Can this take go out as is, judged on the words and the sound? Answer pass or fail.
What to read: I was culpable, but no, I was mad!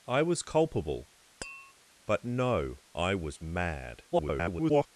fail